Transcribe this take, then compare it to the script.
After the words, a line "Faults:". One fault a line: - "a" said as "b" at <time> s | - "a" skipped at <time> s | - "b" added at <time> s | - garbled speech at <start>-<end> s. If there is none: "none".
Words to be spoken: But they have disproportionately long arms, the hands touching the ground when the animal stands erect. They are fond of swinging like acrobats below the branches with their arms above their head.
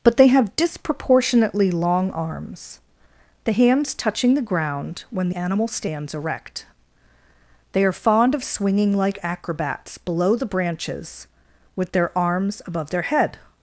But they have disproportionately long arms, the hands touching the ground when animal stands erect. They are fond of swinging like acrobats below the branches with their arms above their head.
Faults:
- "the" skipped at 5.3 s